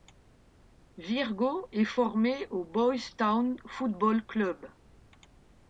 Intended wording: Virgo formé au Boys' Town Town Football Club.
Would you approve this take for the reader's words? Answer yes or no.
no